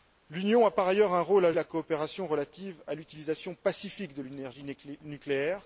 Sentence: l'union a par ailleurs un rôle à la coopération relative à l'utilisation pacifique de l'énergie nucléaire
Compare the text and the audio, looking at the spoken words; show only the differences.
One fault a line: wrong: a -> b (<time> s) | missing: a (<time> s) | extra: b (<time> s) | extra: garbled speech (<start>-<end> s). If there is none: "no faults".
no faults